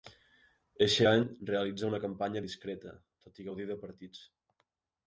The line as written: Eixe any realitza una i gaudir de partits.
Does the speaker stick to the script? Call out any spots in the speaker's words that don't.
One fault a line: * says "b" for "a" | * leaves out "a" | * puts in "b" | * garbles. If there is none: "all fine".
* puts in "campanya discreta tot"